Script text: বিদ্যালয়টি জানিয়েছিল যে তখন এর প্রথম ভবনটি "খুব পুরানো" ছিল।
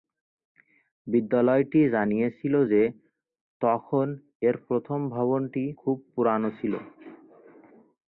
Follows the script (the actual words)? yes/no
yes